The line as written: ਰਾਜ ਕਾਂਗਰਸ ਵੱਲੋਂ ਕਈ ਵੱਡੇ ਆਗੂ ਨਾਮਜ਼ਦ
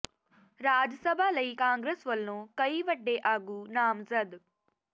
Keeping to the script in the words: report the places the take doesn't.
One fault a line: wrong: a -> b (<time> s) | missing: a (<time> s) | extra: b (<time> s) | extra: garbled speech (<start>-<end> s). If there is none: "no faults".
extra: ਸਭਾ ਲਈ (0.9 s)